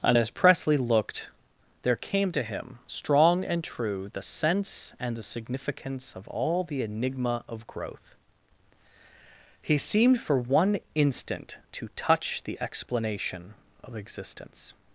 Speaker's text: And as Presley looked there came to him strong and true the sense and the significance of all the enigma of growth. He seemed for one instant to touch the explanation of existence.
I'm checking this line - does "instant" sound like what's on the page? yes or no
yes